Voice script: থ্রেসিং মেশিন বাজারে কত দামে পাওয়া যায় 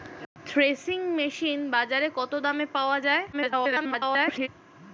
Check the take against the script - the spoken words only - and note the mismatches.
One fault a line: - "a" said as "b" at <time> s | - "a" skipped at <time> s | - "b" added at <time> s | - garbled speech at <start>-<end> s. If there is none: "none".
- garbled speech at 3.3-4.5 s